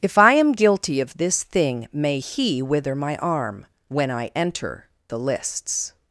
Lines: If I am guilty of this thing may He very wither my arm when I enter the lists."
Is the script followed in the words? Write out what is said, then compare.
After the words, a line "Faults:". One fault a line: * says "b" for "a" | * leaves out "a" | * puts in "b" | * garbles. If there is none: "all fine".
If I am guilty of this thing may He wither my arm when I enter the lists."
Faults:
* leaves out "very"